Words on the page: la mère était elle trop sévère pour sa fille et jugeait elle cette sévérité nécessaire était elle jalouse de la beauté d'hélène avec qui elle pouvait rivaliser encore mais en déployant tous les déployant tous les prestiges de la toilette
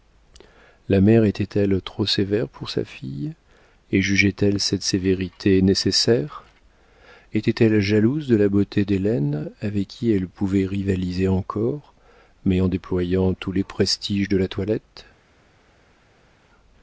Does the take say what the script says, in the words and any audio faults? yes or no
no